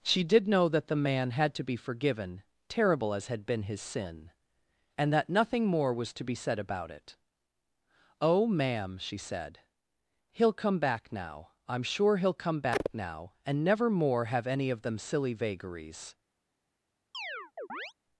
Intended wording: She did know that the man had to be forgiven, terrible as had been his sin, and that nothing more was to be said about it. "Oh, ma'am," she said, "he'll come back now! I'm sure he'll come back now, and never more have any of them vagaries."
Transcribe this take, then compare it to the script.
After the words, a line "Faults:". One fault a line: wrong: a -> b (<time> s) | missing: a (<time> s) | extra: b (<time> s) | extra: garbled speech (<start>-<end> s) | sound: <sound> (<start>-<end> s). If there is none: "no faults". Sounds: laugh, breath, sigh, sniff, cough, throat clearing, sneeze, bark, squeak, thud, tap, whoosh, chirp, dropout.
She did know that the man had to be forgiven, terrible as had been his sin, and that nothing more was to be said about it. "Oh, ma'am," she said, "he'll come back now! I'm sure he'll come back now, and never more have any of them silly vagaries."
Faults:
extra: silly (15.0 s)
sound: chirp (17.1-17.9 s)